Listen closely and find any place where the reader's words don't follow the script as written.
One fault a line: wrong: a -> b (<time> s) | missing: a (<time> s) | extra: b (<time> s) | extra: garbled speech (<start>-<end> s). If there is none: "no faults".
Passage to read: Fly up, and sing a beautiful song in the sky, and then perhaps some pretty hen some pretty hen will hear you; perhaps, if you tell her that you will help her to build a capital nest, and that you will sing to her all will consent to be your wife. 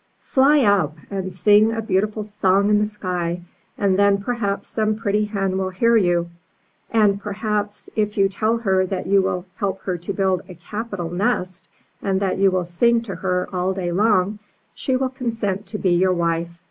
missing: some pretty hen (5.6 s)
extra: and (6.9 s)
extra: day long she (13.7 s)